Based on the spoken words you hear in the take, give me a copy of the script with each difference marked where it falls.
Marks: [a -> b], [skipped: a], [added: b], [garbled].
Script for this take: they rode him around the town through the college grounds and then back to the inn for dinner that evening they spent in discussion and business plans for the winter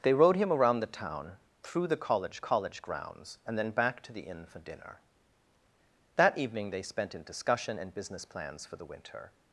they rode him around the town through the college [added: college] grounds and then back to the inn for dinner that evening they spent in discussion and business plans for the winter